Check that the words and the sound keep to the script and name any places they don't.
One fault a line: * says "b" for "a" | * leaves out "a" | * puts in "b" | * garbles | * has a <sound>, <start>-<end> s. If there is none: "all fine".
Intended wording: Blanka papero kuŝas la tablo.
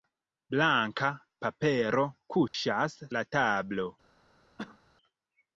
* has a dropout, 2.5-2.5 s
* has a cough, 4.6-4.8 s